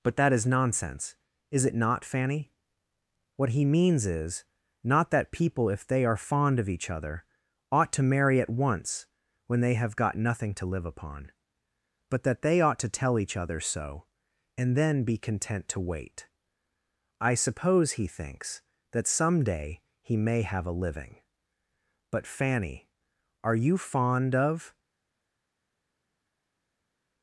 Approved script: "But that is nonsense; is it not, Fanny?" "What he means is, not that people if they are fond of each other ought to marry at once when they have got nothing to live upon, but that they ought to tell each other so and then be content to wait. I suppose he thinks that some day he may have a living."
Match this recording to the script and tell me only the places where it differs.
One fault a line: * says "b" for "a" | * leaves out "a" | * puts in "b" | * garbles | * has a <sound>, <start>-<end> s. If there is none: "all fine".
* puts in "But Fanny are you fond of"